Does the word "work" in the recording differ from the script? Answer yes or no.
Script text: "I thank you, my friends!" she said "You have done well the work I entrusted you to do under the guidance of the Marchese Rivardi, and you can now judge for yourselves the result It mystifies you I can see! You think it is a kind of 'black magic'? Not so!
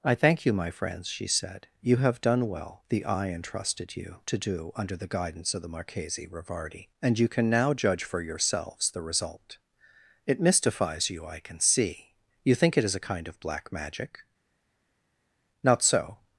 yes